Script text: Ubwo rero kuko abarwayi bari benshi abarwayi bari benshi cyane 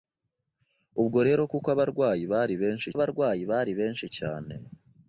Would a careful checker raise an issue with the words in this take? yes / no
no